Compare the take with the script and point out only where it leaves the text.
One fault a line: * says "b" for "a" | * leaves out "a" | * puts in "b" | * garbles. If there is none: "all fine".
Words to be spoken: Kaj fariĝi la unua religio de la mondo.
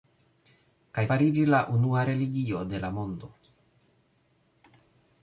all fine